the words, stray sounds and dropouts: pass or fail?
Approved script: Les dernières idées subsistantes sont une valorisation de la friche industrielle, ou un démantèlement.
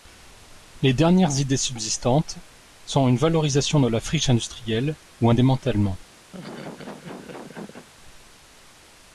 fail